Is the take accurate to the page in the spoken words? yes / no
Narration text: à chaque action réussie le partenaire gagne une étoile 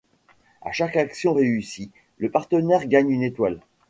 yes